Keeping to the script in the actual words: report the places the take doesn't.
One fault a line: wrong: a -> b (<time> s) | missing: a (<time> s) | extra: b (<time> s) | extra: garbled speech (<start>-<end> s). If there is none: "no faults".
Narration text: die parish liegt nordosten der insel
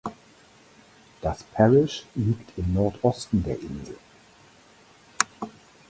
wrong: die -> das (1.2 s)
extra: im (2.6 s)